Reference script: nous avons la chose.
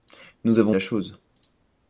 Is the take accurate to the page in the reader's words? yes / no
yes